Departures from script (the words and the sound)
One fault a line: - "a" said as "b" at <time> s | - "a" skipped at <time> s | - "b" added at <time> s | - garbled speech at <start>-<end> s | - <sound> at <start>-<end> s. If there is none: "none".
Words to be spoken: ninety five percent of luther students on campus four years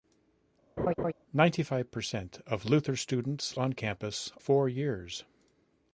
- laugh at 0.8-1.1 s